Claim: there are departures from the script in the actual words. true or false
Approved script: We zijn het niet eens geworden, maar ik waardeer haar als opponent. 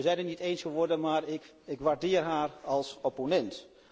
false